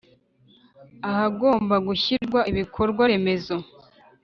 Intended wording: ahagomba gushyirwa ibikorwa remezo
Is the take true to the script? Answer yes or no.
yes